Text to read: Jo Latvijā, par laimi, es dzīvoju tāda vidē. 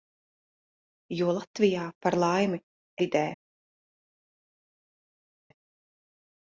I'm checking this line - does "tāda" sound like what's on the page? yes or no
no